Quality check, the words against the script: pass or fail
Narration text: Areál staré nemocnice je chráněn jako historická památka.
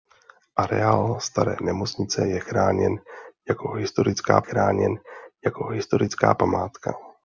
fail